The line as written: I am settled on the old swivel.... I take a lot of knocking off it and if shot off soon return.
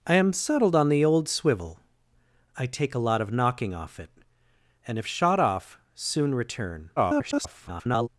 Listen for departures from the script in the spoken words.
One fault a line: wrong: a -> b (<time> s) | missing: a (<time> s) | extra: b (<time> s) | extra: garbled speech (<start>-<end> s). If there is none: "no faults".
extra: garbled speech (7.0-8.1 s)